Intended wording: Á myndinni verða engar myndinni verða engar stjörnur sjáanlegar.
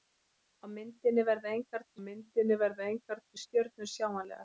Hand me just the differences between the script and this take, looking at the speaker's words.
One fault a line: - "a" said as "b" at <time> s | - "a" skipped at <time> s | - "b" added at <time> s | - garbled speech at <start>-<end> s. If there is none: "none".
none